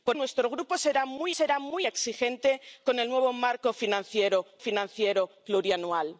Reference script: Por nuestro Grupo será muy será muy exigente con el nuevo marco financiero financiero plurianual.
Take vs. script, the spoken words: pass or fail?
pass